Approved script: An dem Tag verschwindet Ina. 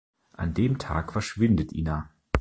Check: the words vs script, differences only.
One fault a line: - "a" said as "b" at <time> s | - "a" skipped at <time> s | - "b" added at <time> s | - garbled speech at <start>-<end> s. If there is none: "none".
none